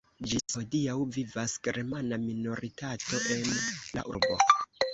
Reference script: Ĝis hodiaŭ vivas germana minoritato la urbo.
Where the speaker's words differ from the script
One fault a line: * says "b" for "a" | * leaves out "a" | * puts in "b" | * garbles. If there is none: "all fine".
* puts in "en"